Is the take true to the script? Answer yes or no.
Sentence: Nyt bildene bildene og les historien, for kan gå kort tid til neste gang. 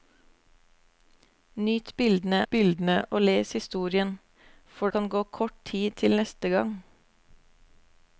yes